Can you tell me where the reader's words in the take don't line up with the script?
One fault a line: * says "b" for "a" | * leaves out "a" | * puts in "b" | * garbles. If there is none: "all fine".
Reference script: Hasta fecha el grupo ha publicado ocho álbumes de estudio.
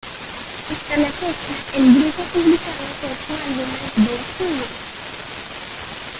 all fine